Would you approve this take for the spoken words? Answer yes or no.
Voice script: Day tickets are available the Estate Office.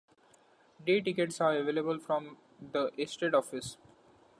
no